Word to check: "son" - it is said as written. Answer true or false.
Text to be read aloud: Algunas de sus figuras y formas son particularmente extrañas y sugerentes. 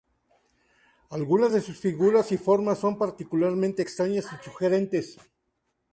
true